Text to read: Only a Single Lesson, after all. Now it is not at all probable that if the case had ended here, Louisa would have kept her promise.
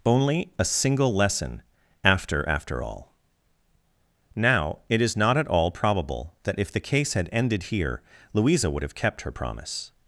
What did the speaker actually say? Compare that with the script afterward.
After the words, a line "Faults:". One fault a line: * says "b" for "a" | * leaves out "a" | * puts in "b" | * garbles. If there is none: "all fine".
Only a Single Lesson, after after all. Now it is not at all probable that if the case had ended here, Louisa would have kept her promise.
Faults:
* puts in "after"